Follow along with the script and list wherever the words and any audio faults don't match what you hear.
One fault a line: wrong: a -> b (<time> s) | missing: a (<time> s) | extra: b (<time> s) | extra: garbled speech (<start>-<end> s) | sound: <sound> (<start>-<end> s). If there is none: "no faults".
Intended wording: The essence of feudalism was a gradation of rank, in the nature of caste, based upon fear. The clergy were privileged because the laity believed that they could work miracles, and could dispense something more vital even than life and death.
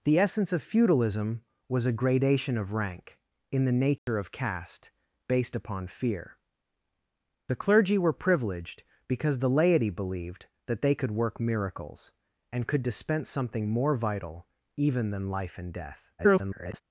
sound: dropout (4.0-4.1 s)
extra: garbled speech (16.2-16.8 s)